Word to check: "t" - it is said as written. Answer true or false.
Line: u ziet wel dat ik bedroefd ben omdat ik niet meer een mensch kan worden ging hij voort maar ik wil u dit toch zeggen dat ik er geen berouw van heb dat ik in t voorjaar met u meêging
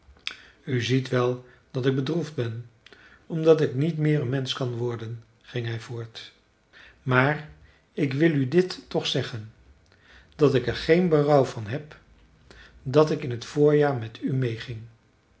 true